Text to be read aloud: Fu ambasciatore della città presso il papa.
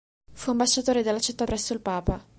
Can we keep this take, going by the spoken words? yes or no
yes